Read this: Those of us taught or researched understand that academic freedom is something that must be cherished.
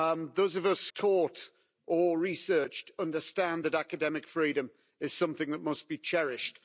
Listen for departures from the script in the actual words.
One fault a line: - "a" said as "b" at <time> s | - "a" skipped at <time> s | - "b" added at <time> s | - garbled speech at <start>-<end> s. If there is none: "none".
none